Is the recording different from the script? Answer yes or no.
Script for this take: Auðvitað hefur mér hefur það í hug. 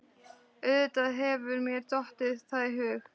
yes